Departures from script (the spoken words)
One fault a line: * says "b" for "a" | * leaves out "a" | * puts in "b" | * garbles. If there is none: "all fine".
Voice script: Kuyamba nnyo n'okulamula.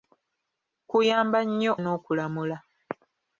all fine